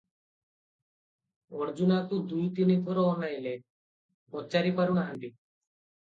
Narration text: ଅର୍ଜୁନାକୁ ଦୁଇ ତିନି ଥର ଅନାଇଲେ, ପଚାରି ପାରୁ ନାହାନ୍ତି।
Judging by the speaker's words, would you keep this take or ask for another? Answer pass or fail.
pass